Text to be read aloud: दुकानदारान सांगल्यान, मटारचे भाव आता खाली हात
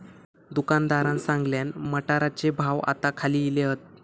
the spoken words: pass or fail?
fail